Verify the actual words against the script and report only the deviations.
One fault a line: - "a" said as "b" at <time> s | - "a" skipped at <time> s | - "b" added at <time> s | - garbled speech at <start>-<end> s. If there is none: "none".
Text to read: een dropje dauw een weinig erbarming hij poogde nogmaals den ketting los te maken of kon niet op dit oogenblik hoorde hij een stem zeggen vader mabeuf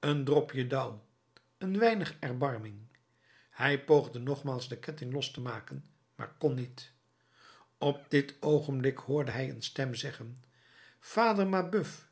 - "of" said as "maar" at 6.1 s